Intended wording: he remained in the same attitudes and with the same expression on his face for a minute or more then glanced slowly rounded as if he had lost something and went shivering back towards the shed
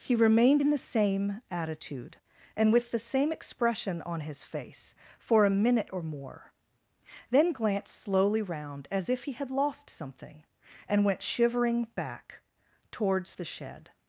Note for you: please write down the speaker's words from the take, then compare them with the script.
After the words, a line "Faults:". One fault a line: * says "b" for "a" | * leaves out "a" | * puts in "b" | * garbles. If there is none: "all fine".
he remained in the same attitude and with the same expression on his face for a minute or more then glanced slowly round as if he had lost something and went shivering back towards the shed
Faults:
* says "attitude" for "attitudes"
* says "round" for "rounded"